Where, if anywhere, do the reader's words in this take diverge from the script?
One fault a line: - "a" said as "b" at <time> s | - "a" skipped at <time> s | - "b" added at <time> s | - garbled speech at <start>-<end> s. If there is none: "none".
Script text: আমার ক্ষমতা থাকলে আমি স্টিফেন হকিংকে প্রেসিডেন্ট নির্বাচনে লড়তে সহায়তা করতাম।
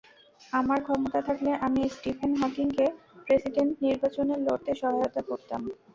none